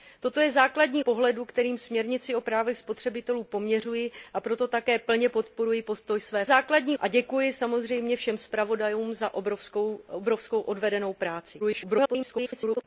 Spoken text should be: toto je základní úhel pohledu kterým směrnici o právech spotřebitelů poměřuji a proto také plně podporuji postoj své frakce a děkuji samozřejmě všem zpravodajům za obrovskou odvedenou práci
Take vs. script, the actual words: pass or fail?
fail